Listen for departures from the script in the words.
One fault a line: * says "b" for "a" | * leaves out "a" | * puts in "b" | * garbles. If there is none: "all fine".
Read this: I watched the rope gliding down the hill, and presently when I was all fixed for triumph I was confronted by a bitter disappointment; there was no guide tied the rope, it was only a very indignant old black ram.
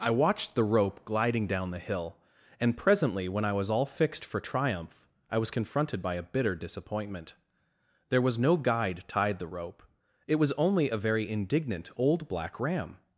all fine